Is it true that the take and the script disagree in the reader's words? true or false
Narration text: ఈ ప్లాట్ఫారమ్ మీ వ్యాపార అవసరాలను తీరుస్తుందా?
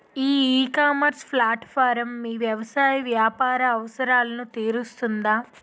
true